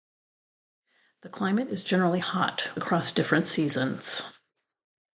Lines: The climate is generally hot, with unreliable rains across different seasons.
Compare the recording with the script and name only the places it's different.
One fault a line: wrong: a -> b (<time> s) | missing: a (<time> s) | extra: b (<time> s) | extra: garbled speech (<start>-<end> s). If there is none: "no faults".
missing: with unreliable rains (2.7 s)